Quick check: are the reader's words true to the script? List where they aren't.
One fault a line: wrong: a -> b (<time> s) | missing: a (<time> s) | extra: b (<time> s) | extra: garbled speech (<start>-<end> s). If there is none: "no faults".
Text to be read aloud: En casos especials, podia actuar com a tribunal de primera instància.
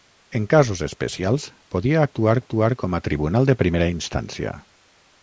extra: actuar (2.4 s)